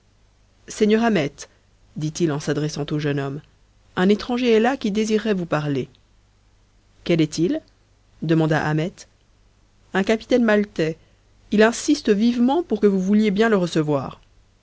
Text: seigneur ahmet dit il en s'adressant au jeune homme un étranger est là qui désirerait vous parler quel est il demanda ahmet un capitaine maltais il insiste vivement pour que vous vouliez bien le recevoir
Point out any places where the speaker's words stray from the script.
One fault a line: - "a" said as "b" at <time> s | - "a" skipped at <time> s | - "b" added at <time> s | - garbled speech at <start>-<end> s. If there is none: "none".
none